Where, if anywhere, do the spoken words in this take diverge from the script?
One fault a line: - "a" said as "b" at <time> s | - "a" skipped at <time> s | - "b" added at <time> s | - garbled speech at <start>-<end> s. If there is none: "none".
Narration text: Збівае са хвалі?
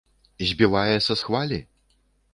none